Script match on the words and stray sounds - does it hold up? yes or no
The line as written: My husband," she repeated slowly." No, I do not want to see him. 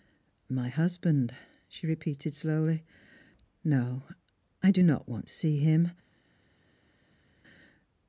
yes